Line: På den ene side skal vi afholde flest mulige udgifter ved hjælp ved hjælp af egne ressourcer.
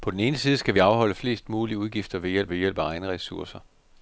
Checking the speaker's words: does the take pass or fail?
pass